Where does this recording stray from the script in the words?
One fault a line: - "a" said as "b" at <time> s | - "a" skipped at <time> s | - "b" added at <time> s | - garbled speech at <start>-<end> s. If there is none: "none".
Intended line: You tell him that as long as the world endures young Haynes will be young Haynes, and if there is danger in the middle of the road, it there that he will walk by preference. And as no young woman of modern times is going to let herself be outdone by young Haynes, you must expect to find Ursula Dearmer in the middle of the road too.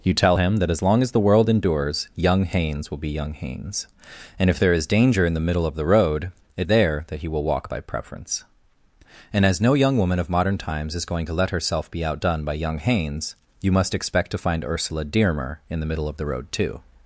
none